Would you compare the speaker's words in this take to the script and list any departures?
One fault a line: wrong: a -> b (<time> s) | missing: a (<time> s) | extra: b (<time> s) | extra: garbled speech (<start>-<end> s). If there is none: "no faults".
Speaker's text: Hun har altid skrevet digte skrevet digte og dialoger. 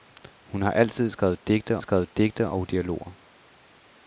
no faults